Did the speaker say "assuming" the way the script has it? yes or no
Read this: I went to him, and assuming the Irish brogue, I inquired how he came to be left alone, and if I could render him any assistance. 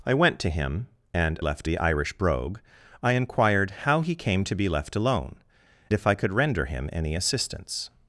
no